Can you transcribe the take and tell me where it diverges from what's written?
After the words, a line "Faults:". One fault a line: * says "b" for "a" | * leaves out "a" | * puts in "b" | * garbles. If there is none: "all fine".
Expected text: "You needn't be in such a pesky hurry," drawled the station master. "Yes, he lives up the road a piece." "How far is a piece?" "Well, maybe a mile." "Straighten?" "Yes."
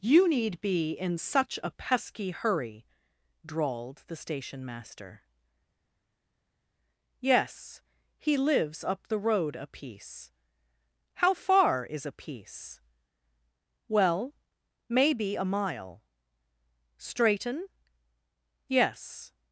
"You need be in such a pesky hurry," drawled the station master. "Yes, he lives up the road a piece." "How far is a piece?" "Well, maybe a mile." "Straighten?" "Yes."
Faults:
* says "need" for "needn't"